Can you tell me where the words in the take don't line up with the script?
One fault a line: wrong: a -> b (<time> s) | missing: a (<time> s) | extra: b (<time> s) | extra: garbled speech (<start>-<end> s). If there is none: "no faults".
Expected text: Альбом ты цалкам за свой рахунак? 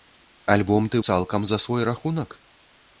no faults